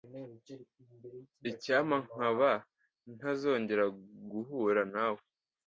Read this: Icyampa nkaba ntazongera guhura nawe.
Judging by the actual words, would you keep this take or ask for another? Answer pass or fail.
pass